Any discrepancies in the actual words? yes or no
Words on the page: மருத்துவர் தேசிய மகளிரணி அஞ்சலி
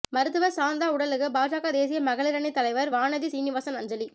yes